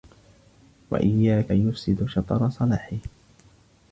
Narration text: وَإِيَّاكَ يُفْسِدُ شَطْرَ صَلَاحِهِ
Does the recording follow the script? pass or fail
pass